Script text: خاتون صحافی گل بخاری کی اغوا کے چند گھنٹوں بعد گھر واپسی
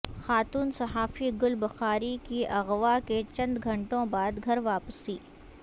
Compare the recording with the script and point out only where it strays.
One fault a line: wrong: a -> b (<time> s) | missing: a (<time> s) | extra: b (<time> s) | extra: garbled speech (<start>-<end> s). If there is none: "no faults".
no faults